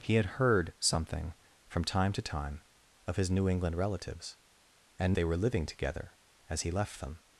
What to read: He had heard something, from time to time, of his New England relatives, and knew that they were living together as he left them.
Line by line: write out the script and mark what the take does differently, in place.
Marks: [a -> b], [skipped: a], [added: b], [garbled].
He had heard something, from time to time, of his New England relatives, and [skipped: knew that] they were living together as he left them.